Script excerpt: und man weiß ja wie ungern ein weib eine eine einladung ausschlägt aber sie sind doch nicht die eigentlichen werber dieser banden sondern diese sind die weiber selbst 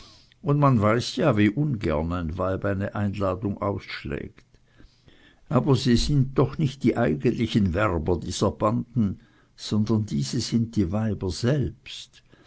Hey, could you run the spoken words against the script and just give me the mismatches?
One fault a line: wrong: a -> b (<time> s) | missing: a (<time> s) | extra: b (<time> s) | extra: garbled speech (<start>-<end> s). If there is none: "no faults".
missing: eine (3.0 s)